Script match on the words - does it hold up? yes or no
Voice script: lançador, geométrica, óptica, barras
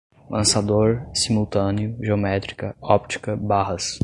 no